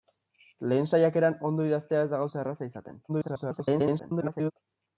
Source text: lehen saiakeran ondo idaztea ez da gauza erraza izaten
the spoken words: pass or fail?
fail